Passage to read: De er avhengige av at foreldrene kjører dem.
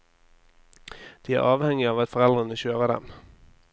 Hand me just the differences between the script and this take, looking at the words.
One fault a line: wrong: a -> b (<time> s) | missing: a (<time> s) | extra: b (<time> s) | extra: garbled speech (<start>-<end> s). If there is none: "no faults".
no faults